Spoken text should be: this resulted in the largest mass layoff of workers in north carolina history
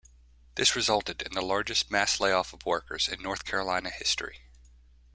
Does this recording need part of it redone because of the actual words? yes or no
no